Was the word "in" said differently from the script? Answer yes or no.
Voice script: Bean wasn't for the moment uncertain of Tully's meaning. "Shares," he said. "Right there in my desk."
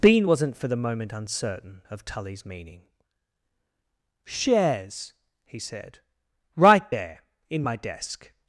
no